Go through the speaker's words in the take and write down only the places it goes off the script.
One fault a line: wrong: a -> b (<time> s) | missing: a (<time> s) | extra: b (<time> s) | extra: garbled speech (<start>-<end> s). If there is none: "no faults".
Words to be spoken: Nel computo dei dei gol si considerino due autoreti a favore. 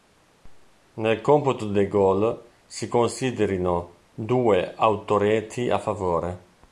missing: dei (1.9 s)